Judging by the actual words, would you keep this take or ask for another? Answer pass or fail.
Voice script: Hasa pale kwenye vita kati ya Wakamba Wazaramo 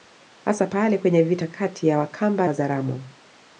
pass